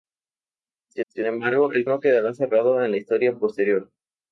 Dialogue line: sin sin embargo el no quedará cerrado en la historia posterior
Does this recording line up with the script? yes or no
yes